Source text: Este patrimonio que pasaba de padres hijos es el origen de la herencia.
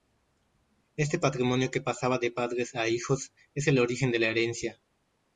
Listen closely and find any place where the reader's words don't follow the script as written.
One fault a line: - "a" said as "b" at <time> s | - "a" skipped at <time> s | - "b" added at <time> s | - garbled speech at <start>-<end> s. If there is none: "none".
- "a" added at 2.7 s